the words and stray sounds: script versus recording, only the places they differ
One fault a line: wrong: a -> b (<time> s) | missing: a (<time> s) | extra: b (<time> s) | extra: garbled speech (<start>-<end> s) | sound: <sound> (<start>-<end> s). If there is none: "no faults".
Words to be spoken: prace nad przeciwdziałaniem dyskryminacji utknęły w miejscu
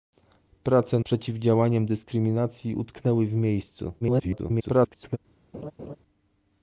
missing: nad (1.0 s)
extra: garbled speech (4.0-5.2 s)
sound: laugh (5.5-6.0 s)